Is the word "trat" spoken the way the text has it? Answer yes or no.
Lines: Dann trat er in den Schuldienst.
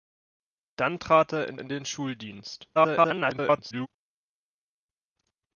yes